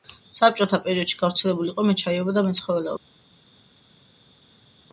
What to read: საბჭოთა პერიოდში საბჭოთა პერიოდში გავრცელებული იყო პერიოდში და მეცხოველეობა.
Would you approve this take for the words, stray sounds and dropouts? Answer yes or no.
no